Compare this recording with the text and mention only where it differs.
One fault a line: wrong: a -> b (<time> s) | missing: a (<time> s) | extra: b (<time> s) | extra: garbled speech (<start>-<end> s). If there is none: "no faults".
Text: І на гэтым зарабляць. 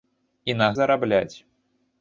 missing: гэтым (0.7 s)